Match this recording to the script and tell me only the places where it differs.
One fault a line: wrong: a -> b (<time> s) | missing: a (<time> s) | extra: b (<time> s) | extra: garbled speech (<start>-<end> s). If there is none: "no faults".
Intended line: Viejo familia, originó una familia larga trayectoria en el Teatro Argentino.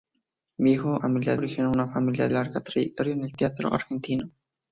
no faults